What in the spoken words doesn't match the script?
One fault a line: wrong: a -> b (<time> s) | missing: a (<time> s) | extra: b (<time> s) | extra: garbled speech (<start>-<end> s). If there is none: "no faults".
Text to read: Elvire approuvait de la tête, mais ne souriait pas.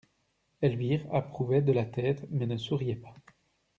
no faults